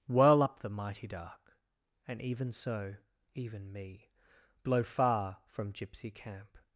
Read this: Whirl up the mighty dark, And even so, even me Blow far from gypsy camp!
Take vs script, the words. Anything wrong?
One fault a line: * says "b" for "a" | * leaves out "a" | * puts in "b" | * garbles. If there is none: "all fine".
all fine